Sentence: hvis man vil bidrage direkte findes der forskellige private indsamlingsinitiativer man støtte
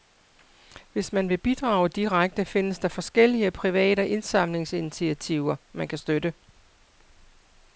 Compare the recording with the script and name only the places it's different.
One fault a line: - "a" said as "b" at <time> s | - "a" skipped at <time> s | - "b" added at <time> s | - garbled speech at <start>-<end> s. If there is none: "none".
- "kan" added at 5.9 s